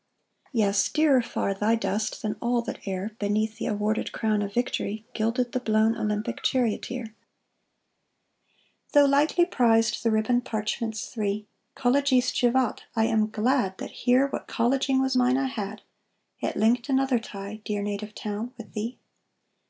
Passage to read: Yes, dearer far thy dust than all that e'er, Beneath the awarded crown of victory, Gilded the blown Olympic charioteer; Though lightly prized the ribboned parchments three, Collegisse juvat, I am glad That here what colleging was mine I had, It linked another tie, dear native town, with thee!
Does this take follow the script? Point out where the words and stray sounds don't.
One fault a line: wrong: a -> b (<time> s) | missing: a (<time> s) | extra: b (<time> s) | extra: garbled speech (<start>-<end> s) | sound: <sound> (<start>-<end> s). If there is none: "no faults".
no faults